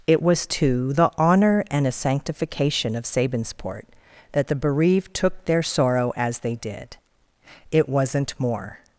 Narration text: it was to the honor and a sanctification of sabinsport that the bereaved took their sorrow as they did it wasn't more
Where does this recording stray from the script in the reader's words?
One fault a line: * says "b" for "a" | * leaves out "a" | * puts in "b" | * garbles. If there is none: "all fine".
all fine